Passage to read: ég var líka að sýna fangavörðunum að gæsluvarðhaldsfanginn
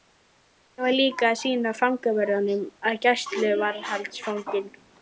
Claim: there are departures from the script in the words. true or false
false